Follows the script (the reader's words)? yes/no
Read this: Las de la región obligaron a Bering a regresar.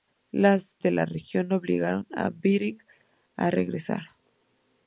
yes